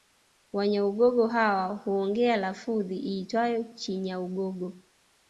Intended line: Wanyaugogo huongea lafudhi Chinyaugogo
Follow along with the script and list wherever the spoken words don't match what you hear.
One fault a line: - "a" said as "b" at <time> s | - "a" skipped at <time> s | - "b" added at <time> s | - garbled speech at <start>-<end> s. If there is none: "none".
- "hawa" added at 1.2 s
- "iitwayo" added at 3.0 s